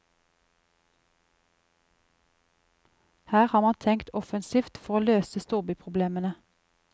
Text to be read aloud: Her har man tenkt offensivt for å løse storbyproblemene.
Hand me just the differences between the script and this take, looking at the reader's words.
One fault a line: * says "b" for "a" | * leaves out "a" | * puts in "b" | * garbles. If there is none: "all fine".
all fine